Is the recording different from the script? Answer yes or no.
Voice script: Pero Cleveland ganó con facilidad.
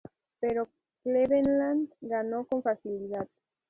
no